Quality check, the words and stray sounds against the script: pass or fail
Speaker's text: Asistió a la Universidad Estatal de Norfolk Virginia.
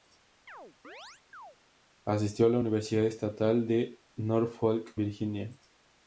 fail